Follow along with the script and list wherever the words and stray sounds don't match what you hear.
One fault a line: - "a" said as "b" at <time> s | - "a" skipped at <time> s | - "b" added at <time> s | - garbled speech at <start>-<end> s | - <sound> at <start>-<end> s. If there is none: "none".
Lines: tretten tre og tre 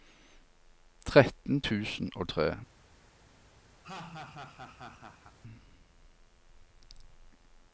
- "tre" said as "tusen" at 1.6 s
- laugh at 3.8-5.4 s